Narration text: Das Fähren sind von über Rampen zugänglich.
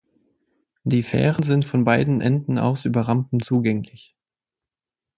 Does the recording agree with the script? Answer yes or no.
no